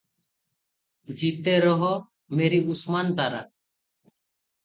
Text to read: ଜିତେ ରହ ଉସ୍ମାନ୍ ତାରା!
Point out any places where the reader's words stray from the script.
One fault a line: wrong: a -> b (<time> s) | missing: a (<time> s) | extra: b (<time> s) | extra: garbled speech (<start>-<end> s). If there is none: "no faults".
extra: ମେରି (2.4 s)